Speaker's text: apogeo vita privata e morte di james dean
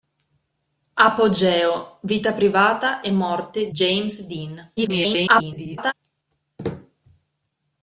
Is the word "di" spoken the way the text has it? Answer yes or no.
no